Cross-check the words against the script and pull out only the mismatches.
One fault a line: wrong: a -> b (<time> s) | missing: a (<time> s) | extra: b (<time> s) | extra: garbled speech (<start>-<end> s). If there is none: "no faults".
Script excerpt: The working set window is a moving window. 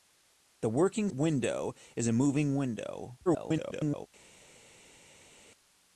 missing: set (1.1 s)
extra: garbled speech (3.3-4.1 s)